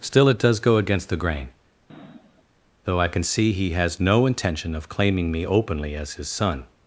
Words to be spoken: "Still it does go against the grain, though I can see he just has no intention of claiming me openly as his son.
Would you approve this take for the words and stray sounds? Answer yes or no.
no